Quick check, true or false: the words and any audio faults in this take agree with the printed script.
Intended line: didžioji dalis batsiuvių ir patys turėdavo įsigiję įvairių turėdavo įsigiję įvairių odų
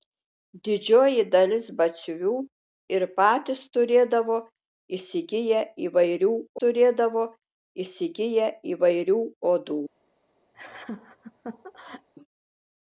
false